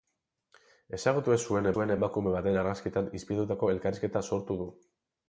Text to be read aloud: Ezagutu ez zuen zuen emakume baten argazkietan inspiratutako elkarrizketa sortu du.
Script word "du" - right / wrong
right